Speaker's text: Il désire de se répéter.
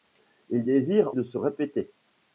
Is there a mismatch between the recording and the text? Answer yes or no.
no